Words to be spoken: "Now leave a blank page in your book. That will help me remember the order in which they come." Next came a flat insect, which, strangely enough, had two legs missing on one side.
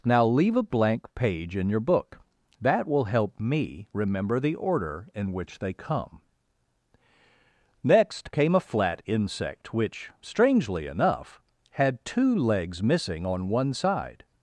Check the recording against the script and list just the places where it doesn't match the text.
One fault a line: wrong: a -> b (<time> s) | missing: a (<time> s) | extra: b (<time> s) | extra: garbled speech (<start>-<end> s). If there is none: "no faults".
no faults